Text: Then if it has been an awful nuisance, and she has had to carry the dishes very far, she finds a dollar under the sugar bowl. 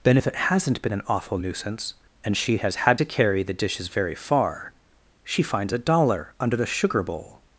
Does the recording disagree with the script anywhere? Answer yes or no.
yes